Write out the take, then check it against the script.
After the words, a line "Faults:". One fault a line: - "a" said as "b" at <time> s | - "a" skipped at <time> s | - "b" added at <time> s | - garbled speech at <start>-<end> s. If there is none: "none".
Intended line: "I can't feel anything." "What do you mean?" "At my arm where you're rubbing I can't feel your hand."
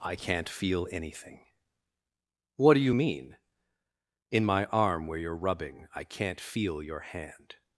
"I can't feel anything." "What do you mean?" "In my arm where you're rubbing I can't feel your hand."
Faults:
- "At" said as "In" at 4.3 s